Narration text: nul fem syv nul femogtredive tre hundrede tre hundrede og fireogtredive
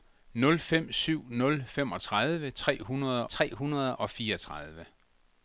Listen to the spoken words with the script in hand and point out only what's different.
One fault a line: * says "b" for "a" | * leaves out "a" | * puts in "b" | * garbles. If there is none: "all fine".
all fine